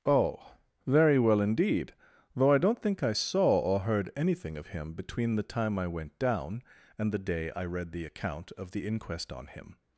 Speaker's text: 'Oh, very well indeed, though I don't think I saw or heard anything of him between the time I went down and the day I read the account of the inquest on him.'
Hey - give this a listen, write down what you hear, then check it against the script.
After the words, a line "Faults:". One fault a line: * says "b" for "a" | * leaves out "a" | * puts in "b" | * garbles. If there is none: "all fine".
'Oh, very well indeed, though I don't think I saw or heard anything of him between the time I went down and the day I read the account of the inquest on him.'
Faults:
all fine